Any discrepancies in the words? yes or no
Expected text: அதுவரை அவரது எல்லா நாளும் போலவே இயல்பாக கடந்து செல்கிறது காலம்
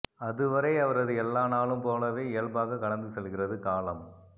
no